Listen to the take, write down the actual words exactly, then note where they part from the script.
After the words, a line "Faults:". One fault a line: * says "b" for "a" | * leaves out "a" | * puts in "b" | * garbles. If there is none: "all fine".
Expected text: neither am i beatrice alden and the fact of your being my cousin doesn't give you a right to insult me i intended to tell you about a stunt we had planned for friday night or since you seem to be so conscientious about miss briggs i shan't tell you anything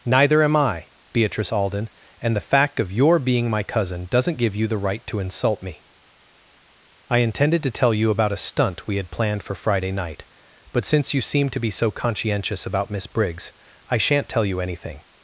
neither am i beatrice alden and the fact of your being my cousin doesn't give you the right to insult me i intended to tell you about a stunt we had planned for friday night but since you seem to be so conscientious about miss briggs i shan't tell you anything
Faults:
* says "the" for "a"
* says "but" for "or"